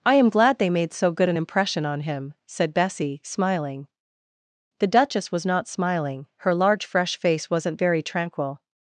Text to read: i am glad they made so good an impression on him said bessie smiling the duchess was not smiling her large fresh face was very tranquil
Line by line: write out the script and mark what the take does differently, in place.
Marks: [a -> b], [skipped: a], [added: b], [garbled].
i am glad they made so good an impression on him said bessie smiling the duchess was not smiling her large fresh face [was -> wasn't] very tranquil